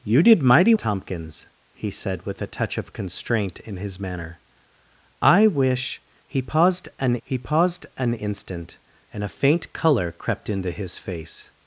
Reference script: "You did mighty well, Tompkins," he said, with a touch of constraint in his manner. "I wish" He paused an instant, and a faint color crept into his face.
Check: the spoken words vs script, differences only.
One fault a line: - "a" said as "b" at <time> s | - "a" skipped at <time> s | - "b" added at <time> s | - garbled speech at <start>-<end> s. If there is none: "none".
- "well" skipped at 0.7 s
- "He paused an" added at 7.2 s